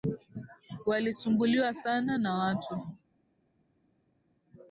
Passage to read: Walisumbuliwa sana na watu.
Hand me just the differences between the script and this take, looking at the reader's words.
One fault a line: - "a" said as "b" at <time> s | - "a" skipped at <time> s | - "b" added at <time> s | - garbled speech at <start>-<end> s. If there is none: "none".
none